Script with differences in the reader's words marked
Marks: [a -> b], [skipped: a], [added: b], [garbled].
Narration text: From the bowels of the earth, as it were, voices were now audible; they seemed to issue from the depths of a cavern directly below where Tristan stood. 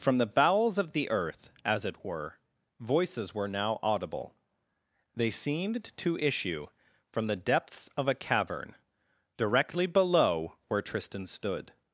From the bowels of the earth, as it were, voices were now audible; they seemed to issue from the depths of a cavern directly below where Tristan stood.